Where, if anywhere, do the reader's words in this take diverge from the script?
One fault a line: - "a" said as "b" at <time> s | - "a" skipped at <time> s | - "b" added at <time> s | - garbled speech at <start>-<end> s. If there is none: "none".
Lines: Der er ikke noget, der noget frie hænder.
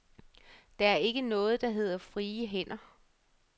- "noget" said as "hedder" at 1.7 s